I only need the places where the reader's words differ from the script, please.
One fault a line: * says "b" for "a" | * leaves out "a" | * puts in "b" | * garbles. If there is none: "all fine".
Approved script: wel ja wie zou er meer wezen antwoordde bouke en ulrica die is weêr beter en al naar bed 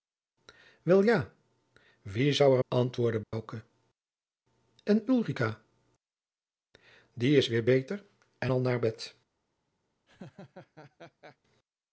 * leaves out "meer wezen"